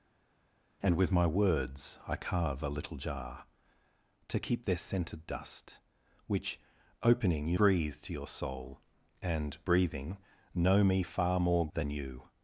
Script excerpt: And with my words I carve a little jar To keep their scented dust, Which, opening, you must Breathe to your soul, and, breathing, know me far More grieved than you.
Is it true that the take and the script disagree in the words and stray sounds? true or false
true